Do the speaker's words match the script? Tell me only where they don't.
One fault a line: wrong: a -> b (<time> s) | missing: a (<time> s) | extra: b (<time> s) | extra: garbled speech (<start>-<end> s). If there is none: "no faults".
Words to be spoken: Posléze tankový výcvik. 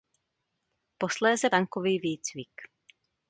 no faults